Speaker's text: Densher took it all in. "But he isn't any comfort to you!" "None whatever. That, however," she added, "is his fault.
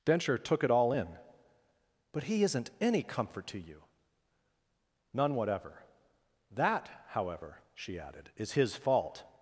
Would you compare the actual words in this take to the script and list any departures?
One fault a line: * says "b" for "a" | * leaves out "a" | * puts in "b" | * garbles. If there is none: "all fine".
all fine